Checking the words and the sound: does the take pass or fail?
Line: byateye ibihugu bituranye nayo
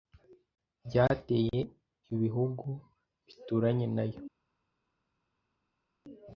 pass